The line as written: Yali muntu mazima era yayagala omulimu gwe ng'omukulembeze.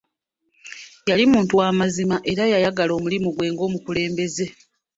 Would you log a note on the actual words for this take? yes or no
yes